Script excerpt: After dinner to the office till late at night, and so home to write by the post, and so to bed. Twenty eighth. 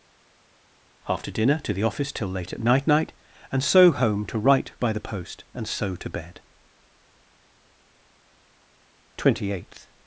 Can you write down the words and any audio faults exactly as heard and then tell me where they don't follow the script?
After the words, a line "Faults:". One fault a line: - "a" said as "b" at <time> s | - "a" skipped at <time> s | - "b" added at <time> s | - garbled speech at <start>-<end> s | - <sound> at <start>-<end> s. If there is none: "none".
After dinner to the office till late at night night, and so home to write by the post, and so to bed. Twenty eighth.
Faults:
- "night" added at 2.9 s